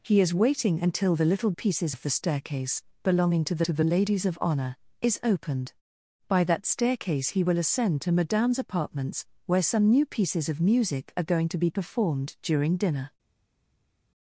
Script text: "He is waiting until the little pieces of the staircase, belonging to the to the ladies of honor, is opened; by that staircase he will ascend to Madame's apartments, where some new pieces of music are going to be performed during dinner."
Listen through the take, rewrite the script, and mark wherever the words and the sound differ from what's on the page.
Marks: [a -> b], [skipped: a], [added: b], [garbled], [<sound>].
"He is waiting until the little pieces of the staircase, belonging to the to the ladies of honor, is opened; by that staircase he will ascend to Madame's apartments, where some new pieces of music are going to be performed during dinner."